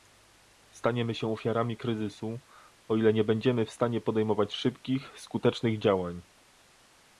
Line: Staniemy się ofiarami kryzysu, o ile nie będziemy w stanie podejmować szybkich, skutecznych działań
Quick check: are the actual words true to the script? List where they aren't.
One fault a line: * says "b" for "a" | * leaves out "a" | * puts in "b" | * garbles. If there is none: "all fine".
all fine